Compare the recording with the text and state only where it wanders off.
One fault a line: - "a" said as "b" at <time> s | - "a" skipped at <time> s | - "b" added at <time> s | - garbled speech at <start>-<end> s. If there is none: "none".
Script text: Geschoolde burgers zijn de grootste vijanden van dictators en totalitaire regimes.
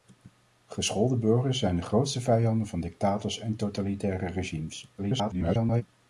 - garbled speech at 5.0-5.8 s